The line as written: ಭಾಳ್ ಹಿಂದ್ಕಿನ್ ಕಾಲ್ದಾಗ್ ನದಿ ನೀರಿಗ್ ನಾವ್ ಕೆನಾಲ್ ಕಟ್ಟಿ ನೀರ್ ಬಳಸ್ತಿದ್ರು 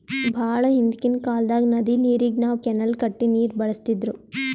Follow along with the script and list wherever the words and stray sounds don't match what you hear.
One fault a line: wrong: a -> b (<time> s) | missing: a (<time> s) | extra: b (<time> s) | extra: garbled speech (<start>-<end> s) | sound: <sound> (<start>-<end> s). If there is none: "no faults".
no faults